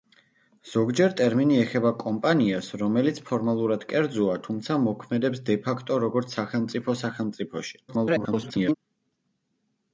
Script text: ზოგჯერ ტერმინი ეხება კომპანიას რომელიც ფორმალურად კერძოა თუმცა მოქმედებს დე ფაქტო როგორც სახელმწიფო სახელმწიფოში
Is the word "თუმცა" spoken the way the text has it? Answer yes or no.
yes